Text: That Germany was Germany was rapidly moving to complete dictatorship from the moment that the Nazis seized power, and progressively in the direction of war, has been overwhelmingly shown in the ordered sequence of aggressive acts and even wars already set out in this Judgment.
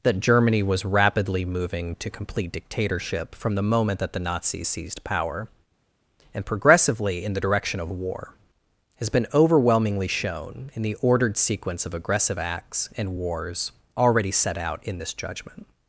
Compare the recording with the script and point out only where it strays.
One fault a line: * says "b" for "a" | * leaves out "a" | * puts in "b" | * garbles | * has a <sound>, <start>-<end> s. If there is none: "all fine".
* leaves out "Germany was"
* leaves out "even"